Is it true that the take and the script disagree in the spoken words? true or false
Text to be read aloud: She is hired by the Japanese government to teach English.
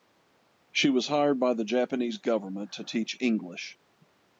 true